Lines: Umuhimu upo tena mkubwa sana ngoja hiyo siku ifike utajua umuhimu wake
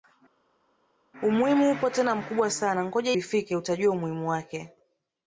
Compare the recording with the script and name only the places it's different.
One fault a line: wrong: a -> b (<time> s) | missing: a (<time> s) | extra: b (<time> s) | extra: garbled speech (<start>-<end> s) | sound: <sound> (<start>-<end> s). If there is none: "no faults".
missing: hiyo siku (3.1 s)